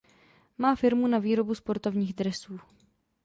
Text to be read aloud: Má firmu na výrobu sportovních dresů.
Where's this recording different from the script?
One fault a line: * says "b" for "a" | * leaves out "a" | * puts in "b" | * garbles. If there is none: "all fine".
all fine